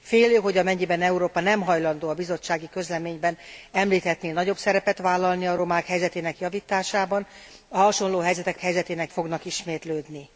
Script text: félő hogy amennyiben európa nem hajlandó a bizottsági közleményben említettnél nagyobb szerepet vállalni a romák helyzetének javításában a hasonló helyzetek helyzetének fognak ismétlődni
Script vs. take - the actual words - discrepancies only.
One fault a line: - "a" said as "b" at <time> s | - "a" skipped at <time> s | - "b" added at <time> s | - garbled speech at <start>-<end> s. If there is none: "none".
none